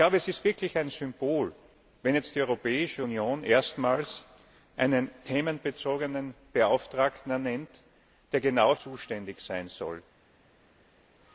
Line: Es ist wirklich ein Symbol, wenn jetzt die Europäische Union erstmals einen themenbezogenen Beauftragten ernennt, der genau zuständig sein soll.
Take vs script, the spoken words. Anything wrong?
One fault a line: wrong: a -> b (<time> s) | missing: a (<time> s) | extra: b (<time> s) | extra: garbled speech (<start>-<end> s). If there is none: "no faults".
no faults